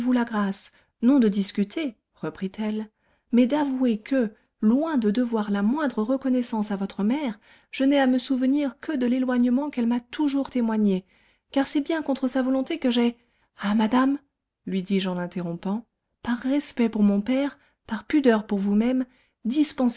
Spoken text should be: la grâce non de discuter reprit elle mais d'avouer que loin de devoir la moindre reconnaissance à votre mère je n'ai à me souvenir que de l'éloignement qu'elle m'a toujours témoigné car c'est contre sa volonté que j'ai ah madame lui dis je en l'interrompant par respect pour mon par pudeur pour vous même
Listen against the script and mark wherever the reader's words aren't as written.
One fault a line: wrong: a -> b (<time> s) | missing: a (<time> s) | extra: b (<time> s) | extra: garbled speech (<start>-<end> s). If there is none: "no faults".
extra: bien (11.8 s)
extra: père (17.2 s)